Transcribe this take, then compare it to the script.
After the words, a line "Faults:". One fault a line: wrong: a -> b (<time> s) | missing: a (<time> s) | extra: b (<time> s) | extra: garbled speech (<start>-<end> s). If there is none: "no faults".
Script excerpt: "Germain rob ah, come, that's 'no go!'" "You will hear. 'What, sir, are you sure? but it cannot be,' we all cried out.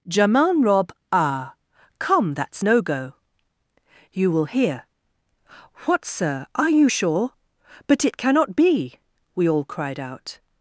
"Germain rob ah, come, that's 'no go!'" "You will hear. 'What, sir, are you sure? but it cannot be,' we all cried out.
Faults:
no faults